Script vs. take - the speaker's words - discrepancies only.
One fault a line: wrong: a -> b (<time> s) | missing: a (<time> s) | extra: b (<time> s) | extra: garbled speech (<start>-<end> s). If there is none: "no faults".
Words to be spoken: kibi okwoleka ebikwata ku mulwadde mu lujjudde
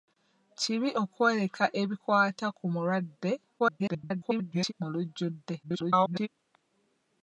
extra: garbled speech (3.6-4.7 s)
extra: garbled speech (5.6-6.3 s)